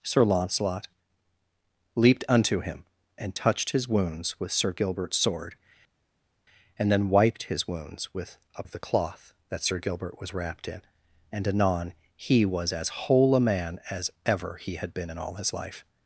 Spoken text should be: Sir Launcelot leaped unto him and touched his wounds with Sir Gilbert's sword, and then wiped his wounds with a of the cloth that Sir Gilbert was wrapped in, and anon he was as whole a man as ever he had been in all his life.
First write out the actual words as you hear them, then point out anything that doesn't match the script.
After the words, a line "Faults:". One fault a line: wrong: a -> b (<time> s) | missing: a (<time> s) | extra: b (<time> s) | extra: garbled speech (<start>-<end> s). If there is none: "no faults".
Sir Launcelot leaped unto him and touched his wounds with Sir Gilbert's sword, and then wiped his wounds with a of the cloth that Sir Gilbert was wrapped in, and anon he was as whole a man as ever he had been in all his life.
Faults:
no faults